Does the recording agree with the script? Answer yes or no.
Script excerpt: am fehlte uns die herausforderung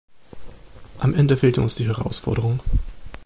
no